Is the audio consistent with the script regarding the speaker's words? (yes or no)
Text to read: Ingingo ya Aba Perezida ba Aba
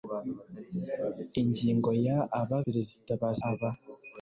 yes